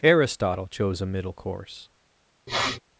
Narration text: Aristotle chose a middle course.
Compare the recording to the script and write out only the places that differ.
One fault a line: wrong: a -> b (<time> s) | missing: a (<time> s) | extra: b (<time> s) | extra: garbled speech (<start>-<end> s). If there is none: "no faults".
no faults